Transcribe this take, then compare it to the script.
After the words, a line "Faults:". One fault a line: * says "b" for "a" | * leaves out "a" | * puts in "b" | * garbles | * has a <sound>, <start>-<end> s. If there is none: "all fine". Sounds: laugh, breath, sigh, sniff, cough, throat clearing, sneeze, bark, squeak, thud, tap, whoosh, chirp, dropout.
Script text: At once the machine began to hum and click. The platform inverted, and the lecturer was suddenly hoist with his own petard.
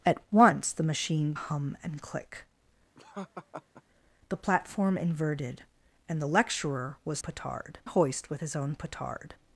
At once the machine hum and click. The platform inverted, and the lecturer was petard hoist with his own petard.
Faults:
* leaves out "began to"
* has a laugh, 3.0-3.8 s
* says "petard" for "suddenly"